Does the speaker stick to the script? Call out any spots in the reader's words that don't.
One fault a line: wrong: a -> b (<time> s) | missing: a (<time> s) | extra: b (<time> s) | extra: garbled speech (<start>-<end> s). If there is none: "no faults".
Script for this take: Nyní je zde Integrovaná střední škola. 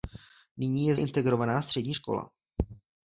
missing: zde (0.9 s)